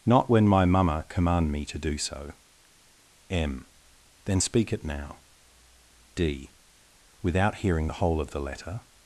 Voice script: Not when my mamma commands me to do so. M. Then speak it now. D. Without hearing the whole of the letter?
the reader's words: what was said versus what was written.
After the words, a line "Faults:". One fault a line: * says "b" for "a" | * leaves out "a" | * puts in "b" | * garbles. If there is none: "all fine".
Not when my mamma command me to do so. M. Then speak it now. D. Without hearing the whole of the letter?
Faults:
* says "command" for "commands"